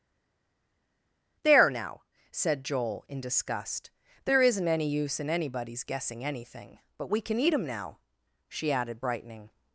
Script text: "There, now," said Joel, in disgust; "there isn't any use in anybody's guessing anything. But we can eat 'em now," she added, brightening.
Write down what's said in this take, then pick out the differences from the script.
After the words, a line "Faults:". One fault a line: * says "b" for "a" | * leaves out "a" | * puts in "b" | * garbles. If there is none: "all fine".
"There, now," said Joel, in disgust; "there isn't any use in anybody's guessing anything. But we can eat 'em now," she added, brightening.
Faults:
all fine